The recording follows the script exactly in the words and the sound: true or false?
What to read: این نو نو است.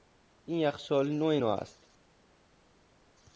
false